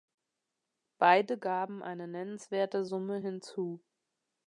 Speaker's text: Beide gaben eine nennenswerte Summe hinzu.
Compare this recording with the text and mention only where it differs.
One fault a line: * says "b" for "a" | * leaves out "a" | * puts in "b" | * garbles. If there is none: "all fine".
all fine